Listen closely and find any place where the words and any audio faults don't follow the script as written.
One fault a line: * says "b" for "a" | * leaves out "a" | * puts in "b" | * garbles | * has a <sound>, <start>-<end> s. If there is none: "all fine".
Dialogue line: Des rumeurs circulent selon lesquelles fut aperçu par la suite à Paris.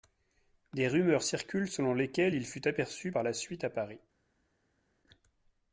* puts in "il"